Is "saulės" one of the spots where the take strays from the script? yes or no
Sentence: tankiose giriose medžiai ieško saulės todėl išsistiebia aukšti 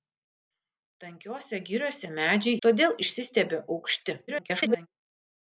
yes